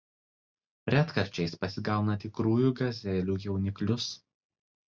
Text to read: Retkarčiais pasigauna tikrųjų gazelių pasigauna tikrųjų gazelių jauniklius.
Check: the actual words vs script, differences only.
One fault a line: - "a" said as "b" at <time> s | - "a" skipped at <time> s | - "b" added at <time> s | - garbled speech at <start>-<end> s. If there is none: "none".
- "pasigauna tikrųjų gazelių" skipped at 3.4 s